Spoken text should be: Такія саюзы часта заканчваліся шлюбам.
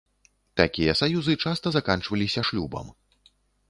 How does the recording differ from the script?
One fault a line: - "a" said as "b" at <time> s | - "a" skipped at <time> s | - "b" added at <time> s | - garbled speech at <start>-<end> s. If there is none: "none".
none